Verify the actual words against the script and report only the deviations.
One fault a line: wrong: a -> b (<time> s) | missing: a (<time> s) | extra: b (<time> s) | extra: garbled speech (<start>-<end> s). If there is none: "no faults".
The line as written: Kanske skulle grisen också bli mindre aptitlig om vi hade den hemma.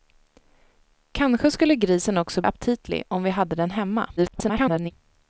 missing: bli mindre (2.4 s)
extra: garbled speech (4.2-4.9 s)